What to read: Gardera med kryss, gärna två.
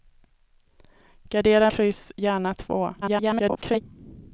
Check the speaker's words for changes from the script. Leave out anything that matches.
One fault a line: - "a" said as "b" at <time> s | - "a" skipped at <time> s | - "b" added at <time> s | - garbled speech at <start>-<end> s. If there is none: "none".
- "med" skipped at 1.7 s
- garbled speech at 3.0-3.8 s